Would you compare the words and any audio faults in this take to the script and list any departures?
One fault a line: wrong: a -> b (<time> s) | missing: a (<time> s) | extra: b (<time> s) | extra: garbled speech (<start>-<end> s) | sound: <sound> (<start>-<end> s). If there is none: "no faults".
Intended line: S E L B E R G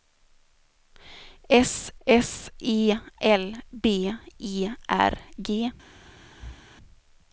extra: s (2.0 s)
sound: thud (6.3-6.6 s)